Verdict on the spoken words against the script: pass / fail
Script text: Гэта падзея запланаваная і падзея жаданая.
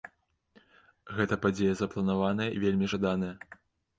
fail